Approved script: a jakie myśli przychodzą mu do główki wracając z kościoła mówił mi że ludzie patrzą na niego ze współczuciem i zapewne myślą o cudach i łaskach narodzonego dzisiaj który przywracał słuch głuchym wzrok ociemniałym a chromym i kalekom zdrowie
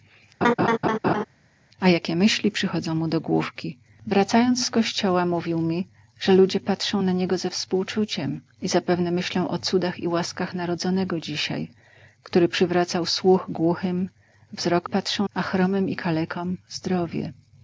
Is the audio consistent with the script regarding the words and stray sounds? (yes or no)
no